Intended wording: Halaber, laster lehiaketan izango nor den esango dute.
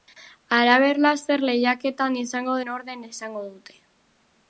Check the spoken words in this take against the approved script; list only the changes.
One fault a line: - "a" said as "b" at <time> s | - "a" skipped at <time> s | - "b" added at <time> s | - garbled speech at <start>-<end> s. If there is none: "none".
none